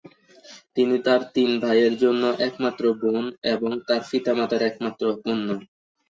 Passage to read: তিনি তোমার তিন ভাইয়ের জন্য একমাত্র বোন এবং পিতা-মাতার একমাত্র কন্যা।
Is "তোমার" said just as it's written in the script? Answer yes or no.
no